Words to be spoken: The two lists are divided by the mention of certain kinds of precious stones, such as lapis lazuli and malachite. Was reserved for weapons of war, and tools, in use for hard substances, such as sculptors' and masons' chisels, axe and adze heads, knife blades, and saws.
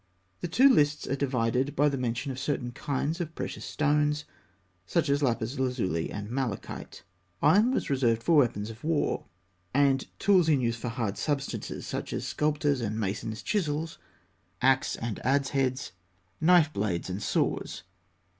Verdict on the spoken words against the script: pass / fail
fail